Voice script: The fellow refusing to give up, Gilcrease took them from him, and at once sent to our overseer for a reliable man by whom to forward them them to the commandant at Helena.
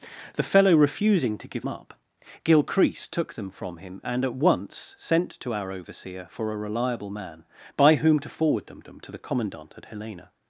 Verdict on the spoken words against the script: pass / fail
pass